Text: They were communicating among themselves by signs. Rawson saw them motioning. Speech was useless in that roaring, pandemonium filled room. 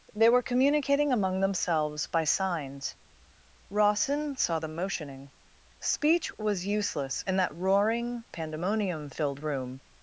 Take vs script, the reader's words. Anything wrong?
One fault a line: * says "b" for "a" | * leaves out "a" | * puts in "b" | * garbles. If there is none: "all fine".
all fine